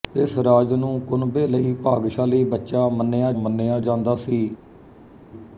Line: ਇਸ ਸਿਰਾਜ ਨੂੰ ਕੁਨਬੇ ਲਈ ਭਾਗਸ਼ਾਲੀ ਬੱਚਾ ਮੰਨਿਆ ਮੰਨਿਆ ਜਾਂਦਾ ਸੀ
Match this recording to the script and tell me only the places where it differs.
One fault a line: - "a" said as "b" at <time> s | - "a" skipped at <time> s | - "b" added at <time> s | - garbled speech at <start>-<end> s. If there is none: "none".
none